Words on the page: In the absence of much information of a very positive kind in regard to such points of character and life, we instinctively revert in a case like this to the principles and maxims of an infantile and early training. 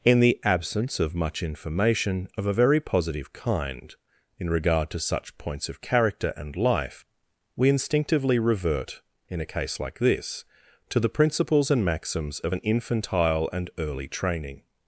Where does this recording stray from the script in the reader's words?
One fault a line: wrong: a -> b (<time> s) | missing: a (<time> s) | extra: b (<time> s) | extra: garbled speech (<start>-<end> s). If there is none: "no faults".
no faults